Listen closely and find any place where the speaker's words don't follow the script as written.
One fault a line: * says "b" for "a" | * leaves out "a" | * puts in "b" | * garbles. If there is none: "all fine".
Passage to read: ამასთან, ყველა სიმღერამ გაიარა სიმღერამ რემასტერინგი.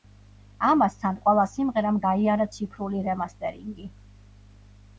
* says "ციფრული" for "სიმღერამ"